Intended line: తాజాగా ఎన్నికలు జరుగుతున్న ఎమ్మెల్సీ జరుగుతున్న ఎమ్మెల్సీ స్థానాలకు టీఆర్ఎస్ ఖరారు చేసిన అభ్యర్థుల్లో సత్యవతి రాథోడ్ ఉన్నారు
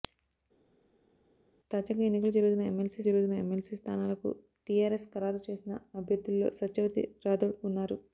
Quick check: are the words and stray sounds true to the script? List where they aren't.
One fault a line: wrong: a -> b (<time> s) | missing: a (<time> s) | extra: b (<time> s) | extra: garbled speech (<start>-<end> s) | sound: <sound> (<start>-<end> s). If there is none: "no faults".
no faults